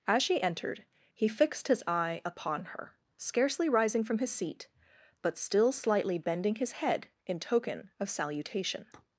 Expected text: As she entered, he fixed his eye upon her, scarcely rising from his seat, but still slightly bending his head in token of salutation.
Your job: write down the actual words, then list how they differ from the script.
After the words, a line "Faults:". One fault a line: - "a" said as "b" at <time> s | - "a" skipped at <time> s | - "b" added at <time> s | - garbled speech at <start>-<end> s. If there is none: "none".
As she entered, he fixed his eye upon her, scarcely rising from his seat, but still slightly bending his head in token of salutation.
Faults:
none